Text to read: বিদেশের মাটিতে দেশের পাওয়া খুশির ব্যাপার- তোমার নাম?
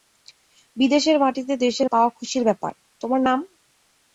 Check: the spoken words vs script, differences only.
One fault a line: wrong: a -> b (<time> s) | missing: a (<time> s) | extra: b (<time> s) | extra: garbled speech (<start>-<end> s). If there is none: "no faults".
no faults